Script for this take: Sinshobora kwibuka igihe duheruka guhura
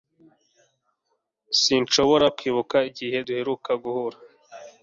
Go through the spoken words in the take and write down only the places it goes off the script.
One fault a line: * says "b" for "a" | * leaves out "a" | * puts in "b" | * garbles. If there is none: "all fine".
all fine